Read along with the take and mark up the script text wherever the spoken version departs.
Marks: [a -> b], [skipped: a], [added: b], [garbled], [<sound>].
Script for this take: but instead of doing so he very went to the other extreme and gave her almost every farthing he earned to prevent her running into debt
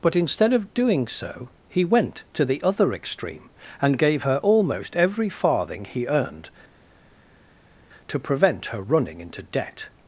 but instead of doing so he [skipped: very] went to the other extreme and gave her almost every farthing he earned to prevent her running into debt